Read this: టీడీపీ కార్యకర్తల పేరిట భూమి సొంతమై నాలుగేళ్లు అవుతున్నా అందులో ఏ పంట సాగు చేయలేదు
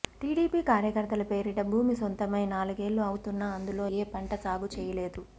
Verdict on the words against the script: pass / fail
pass